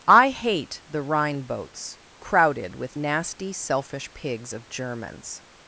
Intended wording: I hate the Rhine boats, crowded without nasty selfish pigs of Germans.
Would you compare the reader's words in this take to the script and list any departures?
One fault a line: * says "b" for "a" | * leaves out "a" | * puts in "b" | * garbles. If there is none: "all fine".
* says "with" for "without"